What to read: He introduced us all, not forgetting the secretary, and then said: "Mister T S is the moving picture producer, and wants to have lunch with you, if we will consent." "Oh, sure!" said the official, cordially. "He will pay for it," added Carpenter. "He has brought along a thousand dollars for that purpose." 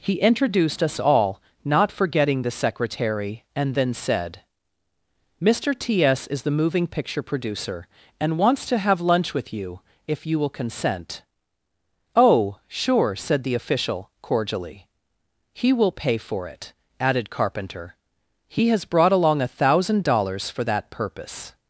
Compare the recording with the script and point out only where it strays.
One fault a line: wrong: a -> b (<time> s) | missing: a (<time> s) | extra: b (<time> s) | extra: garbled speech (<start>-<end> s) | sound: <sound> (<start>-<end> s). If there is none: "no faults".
wrong: we -> you (10.2 s)